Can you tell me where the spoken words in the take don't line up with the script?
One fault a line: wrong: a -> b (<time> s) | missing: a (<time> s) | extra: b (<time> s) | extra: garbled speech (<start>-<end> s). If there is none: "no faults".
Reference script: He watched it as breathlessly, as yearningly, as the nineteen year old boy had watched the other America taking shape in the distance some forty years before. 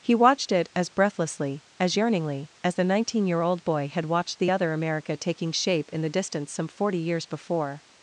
no faults